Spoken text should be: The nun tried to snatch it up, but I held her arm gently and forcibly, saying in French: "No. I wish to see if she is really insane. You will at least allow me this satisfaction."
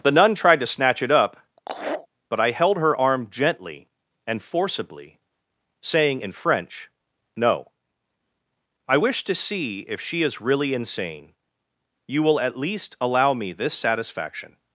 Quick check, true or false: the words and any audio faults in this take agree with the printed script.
false